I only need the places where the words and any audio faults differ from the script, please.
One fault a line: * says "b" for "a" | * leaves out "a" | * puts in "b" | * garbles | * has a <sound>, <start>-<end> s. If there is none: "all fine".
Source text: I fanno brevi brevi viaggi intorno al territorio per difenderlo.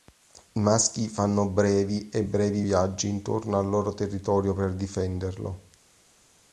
* puts in "maschi"
* puts in "e"
* puts in "loro"